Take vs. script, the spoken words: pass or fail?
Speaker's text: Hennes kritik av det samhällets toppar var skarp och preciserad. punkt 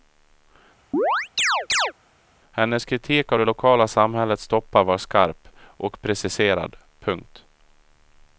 fail